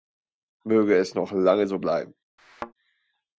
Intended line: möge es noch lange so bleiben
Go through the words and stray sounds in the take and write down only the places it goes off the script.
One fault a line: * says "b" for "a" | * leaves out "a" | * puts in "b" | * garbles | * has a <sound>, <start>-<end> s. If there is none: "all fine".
* has a thud, 2.4-2.7 s